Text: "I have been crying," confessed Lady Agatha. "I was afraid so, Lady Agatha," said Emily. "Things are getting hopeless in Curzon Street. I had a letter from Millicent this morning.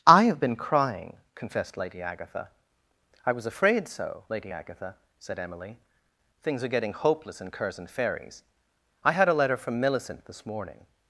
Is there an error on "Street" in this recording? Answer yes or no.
yes